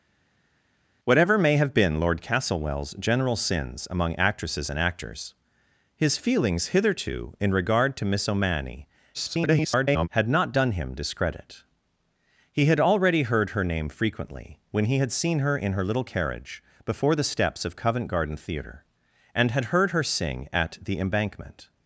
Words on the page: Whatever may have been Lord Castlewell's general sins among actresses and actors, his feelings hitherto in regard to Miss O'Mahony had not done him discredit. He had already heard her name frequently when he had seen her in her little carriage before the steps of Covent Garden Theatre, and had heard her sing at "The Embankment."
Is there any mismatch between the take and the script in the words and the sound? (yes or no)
yes